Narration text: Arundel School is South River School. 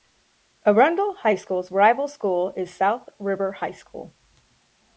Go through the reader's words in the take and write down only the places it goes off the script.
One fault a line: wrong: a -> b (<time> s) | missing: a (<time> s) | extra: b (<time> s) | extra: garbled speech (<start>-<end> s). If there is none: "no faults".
extra: High School's rival (1.2 s)
extra: High (3.5 s)